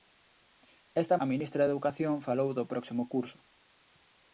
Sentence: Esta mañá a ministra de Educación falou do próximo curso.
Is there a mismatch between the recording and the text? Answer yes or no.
yes